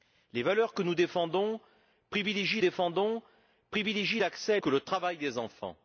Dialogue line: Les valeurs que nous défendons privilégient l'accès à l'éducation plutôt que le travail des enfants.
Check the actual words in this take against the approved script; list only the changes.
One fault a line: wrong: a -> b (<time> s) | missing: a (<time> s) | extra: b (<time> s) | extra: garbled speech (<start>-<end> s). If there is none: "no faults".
extra: défendons privilégient (2.6 s)
missing: l'éducation plutôt (4.6 s)